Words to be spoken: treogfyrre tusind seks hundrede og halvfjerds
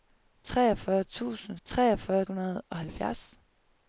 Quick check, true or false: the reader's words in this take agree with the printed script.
false